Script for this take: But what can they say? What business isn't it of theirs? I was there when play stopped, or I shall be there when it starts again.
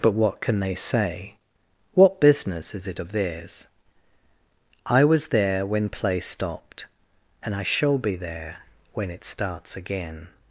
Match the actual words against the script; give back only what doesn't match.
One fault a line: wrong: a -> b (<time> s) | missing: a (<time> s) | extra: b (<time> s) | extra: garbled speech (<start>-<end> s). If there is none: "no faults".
wrong: isn't -> is (2.7 s)
wrong: or -> and (7.4 s)